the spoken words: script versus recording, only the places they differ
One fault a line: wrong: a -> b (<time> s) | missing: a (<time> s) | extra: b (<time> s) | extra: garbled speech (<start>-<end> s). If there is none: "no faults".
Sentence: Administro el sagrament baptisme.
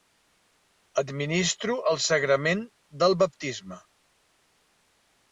extra: del (3.0 s)